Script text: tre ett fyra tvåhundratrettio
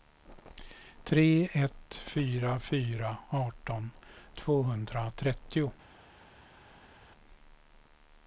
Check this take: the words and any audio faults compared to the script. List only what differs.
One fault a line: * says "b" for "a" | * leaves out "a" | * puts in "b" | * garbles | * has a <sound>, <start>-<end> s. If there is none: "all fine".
* puts in "fyra arton"